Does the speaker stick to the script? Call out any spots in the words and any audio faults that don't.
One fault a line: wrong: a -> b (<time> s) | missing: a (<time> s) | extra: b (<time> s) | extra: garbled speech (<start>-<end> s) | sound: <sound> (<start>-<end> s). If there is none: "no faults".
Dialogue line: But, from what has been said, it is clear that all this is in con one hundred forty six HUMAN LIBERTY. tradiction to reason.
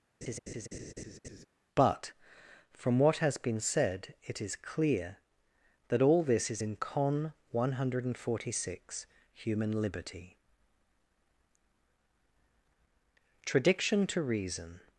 sound: laugh (0.2-1.5 s)